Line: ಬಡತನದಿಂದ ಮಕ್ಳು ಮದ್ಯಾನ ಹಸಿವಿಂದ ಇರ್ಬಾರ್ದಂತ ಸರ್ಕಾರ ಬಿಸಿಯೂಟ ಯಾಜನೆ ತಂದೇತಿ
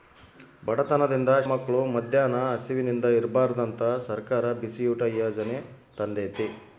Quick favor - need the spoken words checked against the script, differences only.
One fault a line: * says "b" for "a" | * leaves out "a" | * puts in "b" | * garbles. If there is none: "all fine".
all fine